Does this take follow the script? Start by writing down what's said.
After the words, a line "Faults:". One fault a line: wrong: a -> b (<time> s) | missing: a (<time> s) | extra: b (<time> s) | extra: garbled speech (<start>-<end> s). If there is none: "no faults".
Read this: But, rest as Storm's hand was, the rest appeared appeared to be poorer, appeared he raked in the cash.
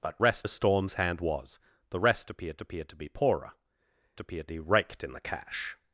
But, rest as Storm's hand was, the rest appeared appeared to be poorer, appeared he raked in the cash.
Faults:
no faults